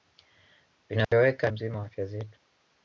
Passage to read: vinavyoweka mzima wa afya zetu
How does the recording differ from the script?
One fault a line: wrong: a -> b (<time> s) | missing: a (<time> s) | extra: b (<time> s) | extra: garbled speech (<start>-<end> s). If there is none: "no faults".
no faults